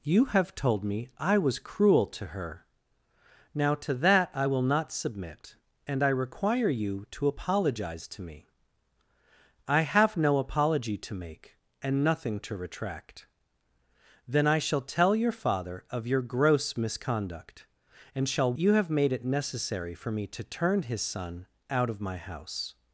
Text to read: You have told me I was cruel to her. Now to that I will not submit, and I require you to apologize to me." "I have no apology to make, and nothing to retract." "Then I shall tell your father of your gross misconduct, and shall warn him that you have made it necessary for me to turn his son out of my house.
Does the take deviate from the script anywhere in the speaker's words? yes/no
yes